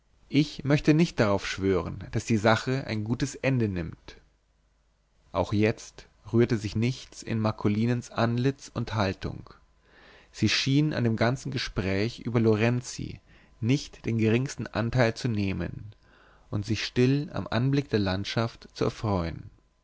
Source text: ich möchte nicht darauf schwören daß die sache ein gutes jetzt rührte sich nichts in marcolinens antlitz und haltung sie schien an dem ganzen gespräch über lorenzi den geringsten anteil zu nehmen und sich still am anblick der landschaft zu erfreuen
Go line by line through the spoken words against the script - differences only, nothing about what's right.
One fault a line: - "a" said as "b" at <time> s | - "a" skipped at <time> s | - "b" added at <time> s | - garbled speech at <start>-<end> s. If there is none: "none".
- "ende nimmt auch" added at 3.4 s
- "nicht" added at 13.6 s